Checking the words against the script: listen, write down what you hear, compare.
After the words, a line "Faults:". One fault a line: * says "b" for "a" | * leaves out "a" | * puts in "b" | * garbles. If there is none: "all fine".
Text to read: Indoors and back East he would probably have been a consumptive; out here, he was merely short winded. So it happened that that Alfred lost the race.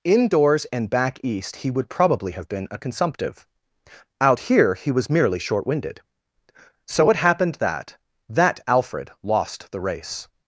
Indoors and back East he would probably have been a consumptive; out here, he was merely short winded. So it happened that that Alfred lost the race.
Faults:
all fine